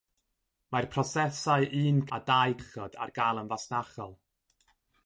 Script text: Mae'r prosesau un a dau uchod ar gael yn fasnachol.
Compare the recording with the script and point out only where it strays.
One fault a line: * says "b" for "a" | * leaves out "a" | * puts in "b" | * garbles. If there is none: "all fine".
all fine